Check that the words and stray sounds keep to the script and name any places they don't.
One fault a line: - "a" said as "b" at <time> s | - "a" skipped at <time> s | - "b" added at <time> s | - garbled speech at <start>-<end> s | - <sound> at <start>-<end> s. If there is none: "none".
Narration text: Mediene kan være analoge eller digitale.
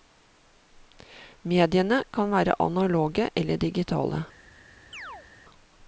- chirp at 4.9-5.3 s